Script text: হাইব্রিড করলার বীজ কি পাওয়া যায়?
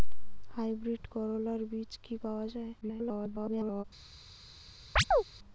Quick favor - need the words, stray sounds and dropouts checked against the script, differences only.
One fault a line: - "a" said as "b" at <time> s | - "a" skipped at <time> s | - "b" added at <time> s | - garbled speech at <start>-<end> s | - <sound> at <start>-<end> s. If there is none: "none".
- garbled speech at 2.8-3.8 s
- chirp at 5.0-5.2 s